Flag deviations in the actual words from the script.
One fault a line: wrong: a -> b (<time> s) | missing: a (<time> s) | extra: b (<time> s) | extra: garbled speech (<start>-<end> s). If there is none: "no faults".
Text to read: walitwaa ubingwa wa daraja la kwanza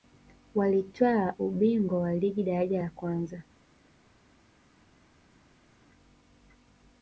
extra: ligi (2.2 s)